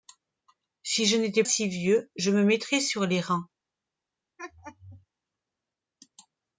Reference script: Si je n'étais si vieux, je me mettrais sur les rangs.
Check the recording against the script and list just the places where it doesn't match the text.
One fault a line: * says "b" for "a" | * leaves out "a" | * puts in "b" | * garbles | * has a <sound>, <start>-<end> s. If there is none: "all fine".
* has a laugh, 4.4-5.1 s